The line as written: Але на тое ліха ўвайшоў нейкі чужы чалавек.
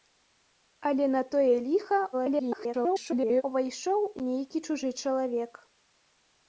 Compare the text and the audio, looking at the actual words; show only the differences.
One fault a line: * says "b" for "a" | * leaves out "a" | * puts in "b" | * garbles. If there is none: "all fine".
* garbles